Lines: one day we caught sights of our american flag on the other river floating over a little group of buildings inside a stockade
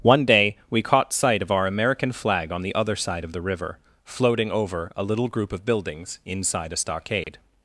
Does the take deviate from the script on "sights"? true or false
true